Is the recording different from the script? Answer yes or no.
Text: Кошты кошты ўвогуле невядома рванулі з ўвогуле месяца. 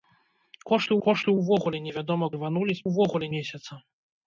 no